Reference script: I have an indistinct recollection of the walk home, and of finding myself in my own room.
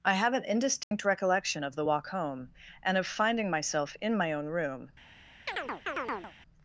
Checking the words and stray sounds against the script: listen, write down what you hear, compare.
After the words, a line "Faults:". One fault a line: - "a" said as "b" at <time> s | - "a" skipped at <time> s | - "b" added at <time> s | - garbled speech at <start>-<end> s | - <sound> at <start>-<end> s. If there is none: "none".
I have an indistinct recollection of the walk home, and of finding myself in my own room.
Faults:
- dropout at 0.8-0.9 s
- chirp at 5.5-6.3 s